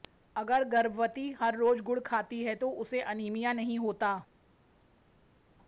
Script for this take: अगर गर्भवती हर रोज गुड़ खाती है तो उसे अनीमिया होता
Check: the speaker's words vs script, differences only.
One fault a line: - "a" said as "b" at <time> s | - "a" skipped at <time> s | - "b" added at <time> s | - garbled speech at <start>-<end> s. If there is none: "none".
- "नहीं" added at 3.5 s